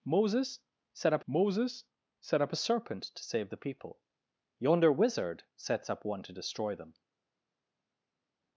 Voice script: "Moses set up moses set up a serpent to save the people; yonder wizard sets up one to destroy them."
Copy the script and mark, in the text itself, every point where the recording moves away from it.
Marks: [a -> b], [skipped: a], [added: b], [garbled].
"Moses set up moses set up a serpent to save the people; yonder wizard sets up one to destroy them."